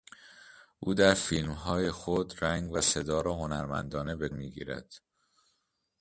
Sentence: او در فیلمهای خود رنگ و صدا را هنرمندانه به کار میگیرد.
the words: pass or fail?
fail